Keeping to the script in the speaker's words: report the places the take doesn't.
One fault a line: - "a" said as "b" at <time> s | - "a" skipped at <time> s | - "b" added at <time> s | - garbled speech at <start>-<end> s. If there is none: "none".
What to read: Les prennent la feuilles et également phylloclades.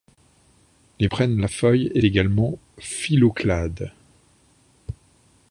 none